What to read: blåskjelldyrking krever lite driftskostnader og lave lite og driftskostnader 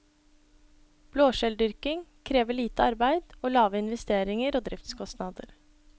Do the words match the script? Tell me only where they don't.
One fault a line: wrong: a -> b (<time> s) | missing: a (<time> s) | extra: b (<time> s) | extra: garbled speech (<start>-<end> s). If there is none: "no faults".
wrong: driftskostnader -> arbeid (2.8 s)
wrong: lite -> investeringer (3.8 s)